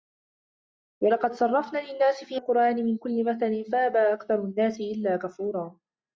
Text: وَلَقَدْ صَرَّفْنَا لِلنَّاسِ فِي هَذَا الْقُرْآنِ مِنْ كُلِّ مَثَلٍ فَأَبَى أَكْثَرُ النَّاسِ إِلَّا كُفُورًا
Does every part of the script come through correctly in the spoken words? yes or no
no